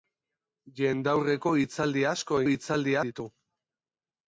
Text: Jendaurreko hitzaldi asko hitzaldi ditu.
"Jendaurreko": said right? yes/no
yes